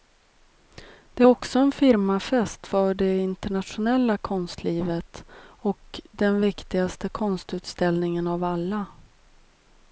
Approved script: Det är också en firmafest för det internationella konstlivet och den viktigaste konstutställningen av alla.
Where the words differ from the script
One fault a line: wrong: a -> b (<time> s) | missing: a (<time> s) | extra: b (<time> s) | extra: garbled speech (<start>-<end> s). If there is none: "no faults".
no faults